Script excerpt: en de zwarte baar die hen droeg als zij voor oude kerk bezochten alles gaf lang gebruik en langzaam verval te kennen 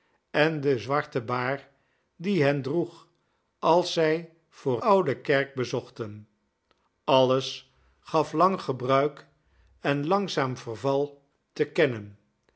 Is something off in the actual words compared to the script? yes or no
no